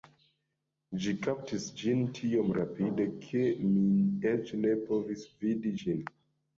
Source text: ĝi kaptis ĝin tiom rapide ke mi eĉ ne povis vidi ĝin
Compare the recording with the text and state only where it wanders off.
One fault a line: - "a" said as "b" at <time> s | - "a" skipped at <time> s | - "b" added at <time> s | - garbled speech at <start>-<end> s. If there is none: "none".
none